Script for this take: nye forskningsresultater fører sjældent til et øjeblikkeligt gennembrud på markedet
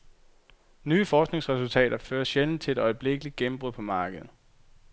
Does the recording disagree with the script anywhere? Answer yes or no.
no